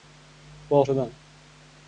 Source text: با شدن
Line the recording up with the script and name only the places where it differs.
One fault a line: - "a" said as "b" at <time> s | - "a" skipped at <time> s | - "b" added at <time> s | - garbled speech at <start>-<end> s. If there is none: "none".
none